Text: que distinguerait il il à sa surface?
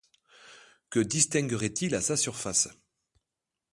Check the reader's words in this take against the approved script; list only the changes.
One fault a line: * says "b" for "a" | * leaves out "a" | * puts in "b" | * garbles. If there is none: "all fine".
* leaves out "il"